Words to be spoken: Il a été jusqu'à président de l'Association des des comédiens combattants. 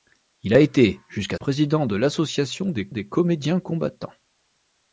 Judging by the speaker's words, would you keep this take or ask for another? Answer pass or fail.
pass